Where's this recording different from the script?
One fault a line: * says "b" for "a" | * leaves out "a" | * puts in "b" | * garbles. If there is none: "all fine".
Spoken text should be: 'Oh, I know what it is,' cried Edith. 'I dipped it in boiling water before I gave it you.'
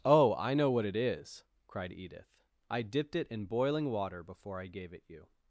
all fine